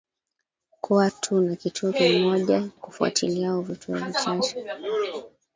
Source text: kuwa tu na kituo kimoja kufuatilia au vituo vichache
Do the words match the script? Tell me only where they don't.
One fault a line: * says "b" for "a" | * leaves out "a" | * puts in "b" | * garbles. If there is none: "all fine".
all fine